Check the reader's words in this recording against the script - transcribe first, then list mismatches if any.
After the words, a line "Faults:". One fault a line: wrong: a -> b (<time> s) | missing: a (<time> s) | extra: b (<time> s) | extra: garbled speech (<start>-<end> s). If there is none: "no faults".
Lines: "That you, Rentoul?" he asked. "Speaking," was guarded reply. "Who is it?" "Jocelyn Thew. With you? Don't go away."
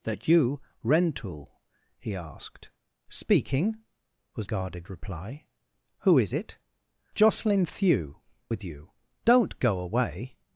"That you, Rentoul?" he asked. "Speaking," was guarded reply. "Who is it?" "Jocelyn Thew. With you? Don't go away."
Faults:
no faults